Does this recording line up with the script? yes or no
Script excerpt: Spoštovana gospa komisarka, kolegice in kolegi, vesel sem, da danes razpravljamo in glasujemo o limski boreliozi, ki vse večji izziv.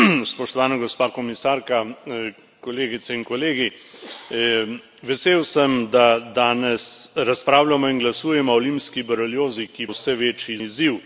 yes